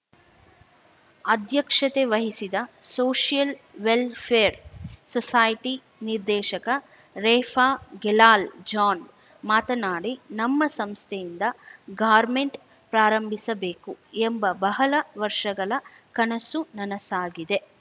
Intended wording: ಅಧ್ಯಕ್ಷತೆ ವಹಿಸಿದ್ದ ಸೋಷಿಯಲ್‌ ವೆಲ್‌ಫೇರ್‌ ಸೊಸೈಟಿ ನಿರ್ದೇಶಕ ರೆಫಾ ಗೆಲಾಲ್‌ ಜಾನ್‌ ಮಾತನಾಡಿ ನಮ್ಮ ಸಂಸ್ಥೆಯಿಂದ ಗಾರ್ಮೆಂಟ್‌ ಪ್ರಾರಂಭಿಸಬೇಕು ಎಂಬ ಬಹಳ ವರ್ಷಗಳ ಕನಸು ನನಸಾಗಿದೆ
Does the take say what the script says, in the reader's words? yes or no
yes